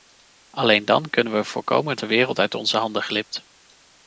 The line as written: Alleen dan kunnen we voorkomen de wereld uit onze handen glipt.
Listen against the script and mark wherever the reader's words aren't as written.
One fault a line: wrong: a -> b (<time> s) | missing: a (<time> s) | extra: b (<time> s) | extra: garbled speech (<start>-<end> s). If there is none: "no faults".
no faults